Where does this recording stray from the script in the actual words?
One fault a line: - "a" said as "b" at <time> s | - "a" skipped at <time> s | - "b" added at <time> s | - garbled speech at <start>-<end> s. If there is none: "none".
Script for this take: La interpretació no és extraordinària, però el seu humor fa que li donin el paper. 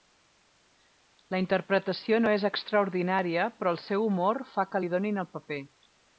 none